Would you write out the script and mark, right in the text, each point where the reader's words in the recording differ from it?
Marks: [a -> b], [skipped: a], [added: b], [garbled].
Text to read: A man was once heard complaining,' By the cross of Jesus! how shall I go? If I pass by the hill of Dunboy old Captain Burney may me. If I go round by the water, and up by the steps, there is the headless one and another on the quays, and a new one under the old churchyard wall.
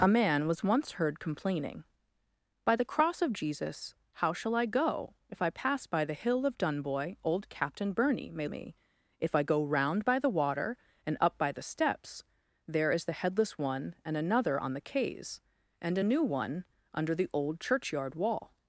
A man was once heard complaining,' By the cross of Jesus! how shall I go? If I pass by the hill of Dunboy old Captain Burney may me. If I go round by the water, and up by the steps, there is the headless one and another on the quays, and a new one under the old churchyard wall.